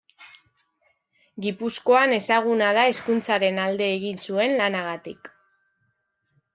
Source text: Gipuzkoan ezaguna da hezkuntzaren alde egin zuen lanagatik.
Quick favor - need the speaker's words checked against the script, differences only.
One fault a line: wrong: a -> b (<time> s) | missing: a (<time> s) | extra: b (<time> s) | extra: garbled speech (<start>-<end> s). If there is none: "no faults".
no faults